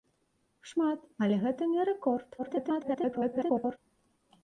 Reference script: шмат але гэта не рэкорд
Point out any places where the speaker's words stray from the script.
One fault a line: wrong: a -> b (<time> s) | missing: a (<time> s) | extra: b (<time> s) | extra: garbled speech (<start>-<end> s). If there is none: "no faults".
extra: garbled speech (2.4-3.8 s)